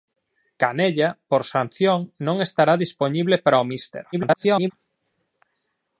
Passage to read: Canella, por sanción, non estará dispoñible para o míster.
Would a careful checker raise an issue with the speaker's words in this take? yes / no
yes